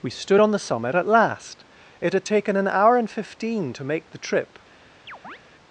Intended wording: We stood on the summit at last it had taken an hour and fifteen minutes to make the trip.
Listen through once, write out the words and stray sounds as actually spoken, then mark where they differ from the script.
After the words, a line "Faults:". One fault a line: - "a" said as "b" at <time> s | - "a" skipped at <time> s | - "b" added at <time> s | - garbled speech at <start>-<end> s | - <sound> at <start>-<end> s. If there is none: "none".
We stood on the summit at last it had taken an hour and fifteen to make the trip.
Faults:
- "minutes" skipped at 3.7 s
- chirp at 5.1-5.4 s